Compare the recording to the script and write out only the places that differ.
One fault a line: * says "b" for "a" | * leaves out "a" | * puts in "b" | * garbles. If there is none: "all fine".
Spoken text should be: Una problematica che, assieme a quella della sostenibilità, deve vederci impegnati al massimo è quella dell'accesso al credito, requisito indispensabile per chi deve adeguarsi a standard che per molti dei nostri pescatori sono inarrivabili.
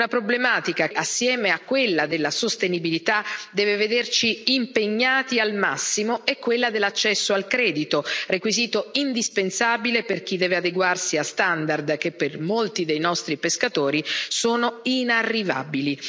* leaves out "che"